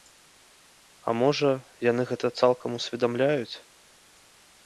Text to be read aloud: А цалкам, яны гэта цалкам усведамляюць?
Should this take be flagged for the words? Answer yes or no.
yes